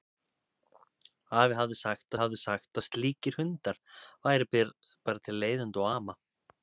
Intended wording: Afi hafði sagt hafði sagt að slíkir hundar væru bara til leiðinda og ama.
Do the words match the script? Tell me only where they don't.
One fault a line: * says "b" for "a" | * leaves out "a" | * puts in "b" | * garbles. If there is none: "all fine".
all fine